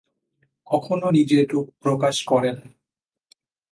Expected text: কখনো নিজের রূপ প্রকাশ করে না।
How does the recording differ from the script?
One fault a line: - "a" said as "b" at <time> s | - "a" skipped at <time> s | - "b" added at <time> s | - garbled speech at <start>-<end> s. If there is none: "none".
none